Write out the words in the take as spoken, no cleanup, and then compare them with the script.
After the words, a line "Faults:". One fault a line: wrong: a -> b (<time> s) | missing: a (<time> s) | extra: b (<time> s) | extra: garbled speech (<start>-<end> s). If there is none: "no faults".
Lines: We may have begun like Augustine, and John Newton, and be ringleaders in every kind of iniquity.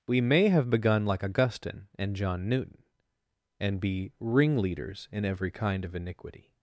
We may have begun like Augustine, and John Newton, and be ringleaders in every kind of iniquity.
Faults:
no faults